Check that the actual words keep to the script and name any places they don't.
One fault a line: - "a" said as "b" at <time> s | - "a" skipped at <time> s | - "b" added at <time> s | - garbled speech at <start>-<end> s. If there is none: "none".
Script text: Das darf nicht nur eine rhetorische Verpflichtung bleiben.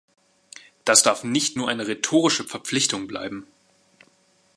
none